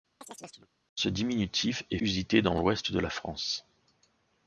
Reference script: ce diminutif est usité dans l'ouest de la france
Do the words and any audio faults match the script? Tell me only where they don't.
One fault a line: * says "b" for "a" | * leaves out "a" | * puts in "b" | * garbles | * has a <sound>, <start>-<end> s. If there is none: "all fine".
* has a chirp, 0.2-0.7 s